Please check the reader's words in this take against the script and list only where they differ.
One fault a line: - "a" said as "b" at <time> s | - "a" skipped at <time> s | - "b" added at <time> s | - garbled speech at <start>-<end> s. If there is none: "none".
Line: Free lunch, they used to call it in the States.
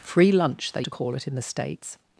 - "used" skipped at 0.8 s